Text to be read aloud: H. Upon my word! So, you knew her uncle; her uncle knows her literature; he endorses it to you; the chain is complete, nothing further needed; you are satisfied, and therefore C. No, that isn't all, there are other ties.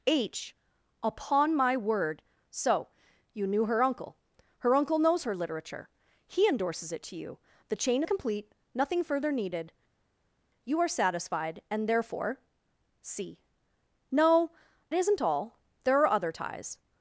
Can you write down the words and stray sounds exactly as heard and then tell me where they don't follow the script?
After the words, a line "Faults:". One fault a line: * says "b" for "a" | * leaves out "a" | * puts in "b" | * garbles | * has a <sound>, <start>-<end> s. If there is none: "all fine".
H. Upon my word! So, you knew her uncle; her uncle knows her literature; he endorses it to you; the chain complete, nothing further needed; you are satisfied, and therefore C. No, isn't all, there are other ties.
Faults:
* leaves out "is"
* leaves out "that"